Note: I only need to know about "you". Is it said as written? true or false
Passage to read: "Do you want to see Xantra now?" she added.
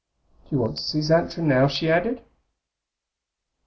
true